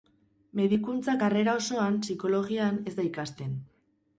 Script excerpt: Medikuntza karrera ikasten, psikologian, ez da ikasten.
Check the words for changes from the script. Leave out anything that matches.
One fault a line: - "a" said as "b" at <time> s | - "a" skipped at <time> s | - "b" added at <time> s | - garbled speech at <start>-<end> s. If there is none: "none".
- "ikasten" said as "osoan" at 1.6 s